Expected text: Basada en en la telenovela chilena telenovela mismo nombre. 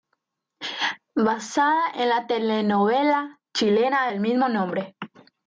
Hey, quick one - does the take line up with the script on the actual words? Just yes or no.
no